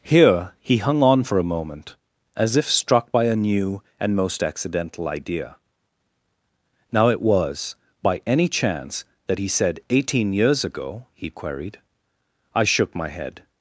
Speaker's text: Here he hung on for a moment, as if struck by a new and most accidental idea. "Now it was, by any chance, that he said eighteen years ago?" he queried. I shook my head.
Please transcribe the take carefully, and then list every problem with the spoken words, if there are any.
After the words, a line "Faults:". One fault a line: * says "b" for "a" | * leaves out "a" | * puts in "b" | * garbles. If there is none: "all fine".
Here he hung on for a moment, as if struck by a new and most accidental idea. "Now it was, by any chance, that he said eighteen years ago?" he queried. I shook my head.
Faults:
all fine